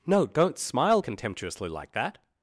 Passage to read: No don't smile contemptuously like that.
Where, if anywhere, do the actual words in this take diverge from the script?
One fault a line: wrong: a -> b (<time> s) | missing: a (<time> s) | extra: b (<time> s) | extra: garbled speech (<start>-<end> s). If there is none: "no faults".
no faults